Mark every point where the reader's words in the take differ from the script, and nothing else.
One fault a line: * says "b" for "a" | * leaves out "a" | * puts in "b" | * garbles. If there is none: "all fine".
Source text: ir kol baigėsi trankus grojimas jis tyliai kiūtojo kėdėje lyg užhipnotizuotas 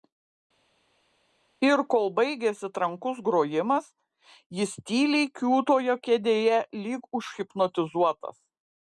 all fine